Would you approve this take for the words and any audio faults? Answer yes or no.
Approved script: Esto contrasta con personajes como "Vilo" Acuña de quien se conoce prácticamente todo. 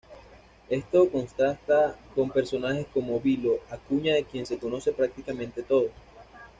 yes